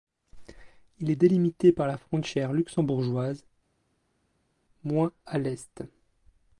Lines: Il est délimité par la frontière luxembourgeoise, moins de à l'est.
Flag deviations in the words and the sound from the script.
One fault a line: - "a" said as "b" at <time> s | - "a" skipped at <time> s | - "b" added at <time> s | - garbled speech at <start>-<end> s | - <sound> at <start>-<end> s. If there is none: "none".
- "de" skipped at 5.1 s